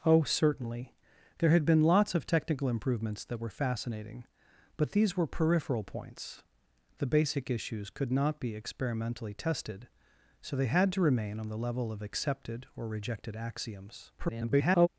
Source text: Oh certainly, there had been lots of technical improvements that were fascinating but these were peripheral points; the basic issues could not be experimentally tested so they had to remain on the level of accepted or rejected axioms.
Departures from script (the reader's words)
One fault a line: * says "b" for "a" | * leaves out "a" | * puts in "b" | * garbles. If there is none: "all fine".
* garbles